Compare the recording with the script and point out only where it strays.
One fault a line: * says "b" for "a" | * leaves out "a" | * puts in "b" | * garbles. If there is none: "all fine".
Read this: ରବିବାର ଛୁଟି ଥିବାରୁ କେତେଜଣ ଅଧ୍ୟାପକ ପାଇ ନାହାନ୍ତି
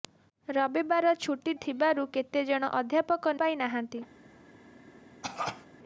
all fine